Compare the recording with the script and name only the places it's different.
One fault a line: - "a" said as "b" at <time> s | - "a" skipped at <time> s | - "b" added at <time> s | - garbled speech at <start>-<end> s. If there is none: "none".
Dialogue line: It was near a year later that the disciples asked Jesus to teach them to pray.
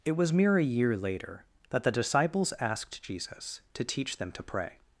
- "near" said as "mere" at 0.3 s